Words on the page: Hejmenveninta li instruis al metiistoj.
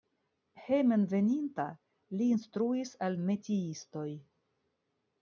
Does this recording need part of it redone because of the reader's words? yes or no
no